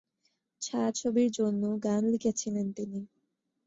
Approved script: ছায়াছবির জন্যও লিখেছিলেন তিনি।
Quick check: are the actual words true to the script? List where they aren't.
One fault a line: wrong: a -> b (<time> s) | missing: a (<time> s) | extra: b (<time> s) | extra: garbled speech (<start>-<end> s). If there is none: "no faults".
extra: গান (1.8 s)